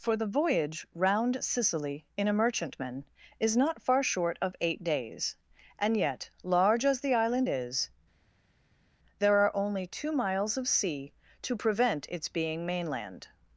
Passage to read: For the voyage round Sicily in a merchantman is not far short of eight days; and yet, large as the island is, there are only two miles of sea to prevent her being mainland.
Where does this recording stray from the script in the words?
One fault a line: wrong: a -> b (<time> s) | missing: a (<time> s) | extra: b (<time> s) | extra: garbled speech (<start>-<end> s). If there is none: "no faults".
wrong: her -> its (12.1 s)